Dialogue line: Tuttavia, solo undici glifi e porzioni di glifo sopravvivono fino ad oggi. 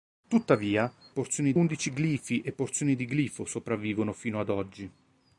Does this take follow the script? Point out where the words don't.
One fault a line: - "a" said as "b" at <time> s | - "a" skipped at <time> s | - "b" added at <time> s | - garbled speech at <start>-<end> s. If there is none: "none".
- "solo" said as "porzioni" at 1.1 s